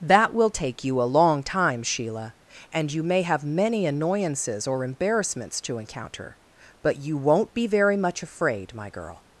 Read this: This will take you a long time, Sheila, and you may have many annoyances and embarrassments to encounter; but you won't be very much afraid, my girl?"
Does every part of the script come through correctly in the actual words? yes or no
no